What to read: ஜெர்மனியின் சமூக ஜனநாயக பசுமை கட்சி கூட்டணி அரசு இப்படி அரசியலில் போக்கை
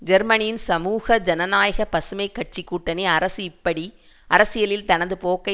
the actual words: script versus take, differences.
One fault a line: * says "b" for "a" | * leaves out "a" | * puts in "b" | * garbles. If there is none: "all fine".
* puts in "தனது"